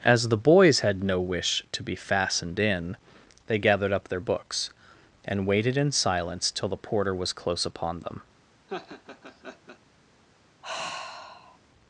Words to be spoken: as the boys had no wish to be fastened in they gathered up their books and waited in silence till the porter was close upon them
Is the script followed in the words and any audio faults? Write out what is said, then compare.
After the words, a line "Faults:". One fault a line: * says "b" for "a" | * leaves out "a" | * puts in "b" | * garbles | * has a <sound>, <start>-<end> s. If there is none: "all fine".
as the boys had no wish to be fastened in they gathered up their books and waited in silence till the porter was close upon them
Faults:
* has a laugh, 8.7-9.8 s
* has a sigh, 10.6-11.6 s